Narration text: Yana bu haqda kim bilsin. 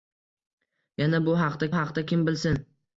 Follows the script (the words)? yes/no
no